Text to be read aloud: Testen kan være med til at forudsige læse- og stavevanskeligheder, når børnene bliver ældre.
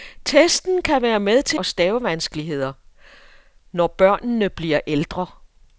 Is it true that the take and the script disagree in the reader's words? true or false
true